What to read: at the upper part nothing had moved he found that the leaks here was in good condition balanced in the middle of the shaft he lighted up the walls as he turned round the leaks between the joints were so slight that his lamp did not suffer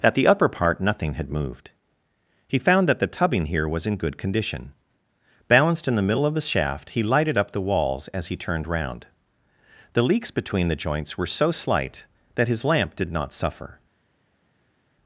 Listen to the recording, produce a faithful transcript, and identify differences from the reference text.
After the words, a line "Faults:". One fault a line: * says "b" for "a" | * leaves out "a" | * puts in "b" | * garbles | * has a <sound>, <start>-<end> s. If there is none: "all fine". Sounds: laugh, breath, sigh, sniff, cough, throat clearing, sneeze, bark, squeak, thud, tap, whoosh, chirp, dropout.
at the upper part nothing had moved he found that the tubbing here was in good condition balanced in the middle of the shaft he lighted up the walls as he turned round the leaks between the joints were so slight that his lamp did not suffer
Faults:
* says "tubbing" for "leaks"